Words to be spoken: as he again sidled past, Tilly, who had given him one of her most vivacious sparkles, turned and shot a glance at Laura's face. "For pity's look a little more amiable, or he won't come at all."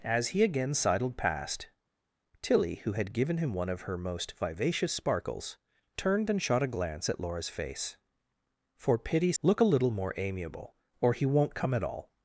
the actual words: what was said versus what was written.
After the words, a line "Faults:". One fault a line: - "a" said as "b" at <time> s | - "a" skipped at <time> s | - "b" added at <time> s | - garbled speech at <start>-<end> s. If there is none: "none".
as he again sidled past, Tilly, who had given him one of her most vivacious sparkles, turned and shot a glance at Laura's face. "For pity's look a little more amiable, or he won't come at all."
Faults:
none